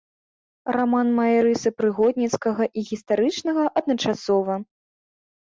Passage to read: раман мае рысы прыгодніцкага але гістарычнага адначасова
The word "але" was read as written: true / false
false